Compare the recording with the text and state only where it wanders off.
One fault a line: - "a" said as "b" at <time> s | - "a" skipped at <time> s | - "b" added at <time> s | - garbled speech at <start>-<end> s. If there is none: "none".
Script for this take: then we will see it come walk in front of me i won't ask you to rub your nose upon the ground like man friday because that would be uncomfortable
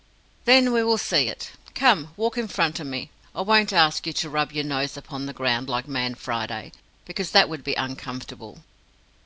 none